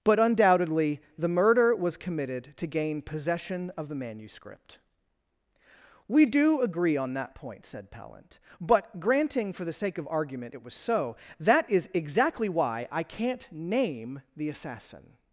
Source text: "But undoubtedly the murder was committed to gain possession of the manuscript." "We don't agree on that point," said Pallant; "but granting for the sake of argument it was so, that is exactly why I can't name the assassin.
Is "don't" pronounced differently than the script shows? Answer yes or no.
yes